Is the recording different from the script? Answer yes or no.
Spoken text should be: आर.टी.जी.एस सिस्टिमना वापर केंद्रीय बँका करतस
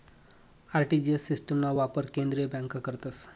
no